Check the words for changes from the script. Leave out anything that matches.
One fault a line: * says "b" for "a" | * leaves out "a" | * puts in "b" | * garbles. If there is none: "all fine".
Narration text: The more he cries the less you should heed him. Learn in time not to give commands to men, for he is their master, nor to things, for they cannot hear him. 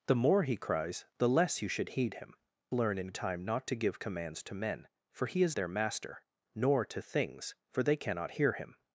all fine